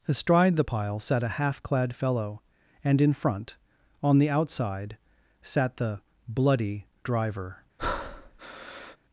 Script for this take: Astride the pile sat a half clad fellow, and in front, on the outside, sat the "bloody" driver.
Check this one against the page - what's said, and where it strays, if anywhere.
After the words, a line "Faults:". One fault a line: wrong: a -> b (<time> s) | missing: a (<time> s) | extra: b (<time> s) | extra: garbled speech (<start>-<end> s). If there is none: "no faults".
Astride the pile sat a half clad fellow, and in front, on the outside, sat the "bloody" driver.
Faults:
no faults